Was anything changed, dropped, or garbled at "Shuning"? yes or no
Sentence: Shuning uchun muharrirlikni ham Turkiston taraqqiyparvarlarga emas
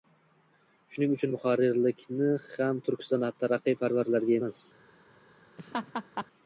no